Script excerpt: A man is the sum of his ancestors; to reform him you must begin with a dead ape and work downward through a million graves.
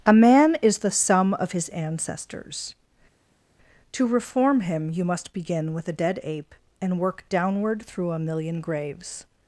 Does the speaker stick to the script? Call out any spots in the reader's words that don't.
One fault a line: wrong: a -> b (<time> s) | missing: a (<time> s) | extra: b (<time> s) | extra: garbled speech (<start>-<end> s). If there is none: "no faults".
no faults